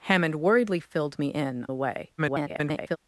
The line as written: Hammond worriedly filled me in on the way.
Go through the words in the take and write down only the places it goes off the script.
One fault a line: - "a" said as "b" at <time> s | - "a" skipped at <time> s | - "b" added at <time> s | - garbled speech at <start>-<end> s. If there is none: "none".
- "on" skipped at 1.7 s
- garbled speech at 2.2-3.0 s